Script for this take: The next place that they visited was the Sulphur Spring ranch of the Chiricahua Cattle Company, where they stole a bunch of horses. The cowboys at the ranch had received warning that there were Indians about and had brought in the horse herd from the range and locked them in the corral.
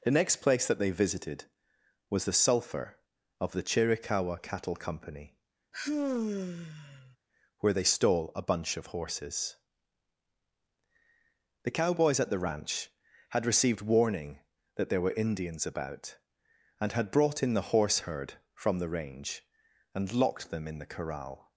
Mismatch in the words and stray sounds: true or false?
true